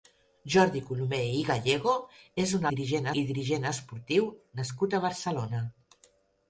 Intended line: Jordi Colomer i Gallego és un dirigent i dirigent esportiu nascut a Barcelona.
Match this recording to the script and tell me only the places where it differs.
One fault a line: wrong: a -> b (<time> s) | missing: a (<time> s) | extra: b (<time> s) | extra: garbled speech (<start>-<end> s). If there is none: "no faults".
no faults